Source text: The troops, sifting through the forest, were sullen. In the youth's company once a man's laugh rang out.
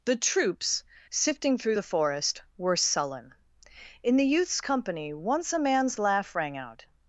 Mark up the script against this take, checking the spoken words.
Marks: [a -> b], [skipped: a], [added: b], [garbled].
The troops, sifting through the forest, were sullen. In the youth's company once a man's laugh rang out.